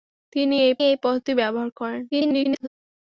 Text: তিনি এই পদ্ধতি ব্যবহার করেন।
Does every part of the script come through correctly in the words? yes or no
no